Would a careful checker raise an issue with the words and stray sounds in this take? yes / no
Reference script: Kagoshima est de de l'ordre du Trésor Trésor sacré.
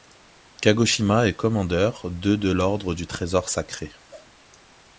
yes